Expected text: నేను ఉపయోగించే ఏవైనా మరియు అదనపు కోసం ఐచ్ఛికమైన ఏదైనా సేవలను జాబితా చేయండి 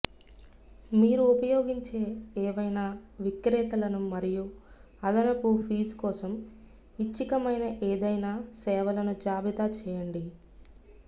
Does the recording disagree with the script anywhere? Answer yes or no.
yes